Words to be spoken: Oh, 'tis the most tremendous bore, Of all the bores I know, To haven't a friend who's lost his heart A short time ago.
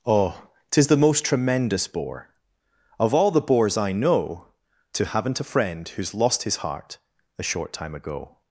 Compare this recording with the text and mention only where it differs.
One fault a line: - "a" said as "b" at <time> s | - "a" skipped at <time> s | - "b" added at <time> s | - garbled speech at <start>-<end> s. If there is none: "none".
none